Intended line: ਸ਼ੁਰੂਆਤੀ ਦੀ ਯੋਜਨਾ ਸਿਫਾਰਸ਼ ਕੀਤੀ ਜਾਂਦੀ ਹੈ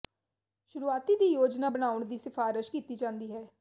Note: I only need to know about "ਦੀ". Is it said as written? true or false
true